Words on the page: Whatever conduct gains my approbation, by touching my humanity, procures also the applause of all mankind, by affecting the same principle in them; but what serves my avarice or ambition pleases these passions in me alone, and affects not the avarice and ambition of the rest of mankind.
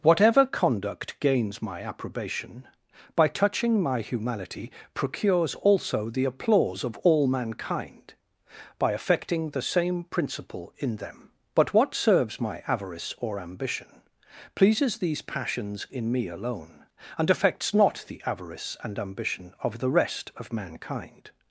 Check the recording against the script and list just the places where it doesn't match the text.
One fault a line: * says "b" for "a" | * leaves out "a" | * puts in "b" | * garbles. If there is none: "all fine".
all fine